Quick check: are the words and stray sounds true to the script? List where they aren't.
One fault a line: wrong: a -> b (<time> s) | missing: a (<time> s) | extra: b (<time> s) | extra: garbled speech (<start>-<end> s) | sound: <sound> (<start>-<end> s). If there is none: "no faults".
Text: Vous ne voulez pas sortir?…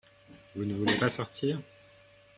no faults